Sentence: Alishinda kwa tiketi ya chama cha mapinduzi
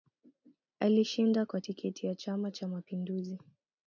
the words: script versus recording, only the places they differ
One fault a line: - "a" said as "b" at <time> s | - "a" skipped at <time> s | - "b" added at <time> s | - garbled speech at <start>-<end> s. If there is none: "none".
none